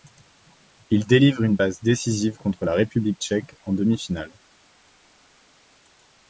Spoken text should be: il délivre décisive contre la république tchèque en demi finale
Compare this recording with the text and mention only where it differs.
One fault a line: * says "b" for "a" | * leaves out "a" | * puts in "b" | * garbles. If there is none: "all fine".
* puts in "une passe"